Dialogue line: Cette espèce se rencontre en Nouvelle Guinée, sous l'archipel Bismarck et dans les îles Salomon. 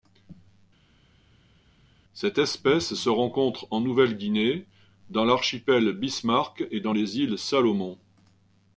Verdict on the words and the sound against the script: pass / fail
fail